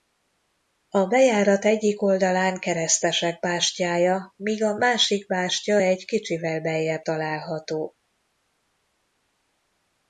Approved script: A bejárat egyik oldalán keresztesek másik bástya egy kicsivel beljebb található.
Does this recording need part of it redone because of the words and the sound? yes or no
yes